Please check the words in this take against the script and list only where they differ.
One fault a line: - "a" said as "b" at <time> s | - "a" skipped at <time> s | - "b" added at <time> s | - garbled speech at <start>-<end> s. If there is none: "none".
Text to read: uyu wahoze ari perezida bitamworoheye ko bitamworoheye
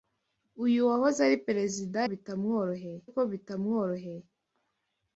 none